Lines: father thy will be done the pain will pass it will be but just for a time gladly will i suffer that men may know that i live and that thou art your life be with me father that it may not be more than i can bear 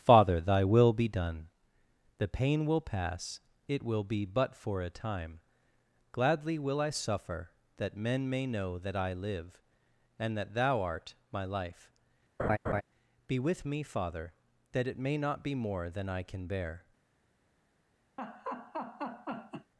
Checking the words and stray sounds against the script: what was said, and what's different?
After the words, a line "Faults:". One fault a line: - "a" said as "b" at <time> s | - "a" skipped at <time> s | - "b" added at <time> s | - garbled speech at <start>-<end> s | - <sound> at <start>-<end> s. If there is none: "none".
father thy will be done the pain will pass it will be but for a time gladly will i suffer that men may know that i live and that thou art my life be with me father that it may not be more than i can bear
Faults:
- "just" skipped at 4.5 s
- "your" said as "my" at 11.3 s
- laugh at 12.4-12.8 s
- laugh at 18.2-19.7 s